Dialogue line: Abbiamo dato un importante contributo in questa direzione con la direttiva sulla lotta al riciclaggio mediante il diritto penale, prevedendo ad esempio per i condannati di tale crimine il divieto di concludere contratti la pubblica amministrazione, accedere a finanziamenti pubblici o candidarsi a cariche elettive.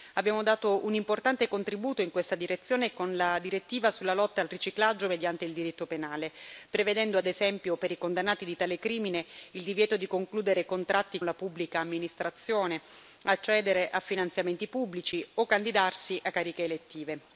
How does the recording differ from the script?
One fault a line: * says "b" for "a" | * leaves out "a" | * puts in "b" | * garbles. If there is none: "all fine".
all fine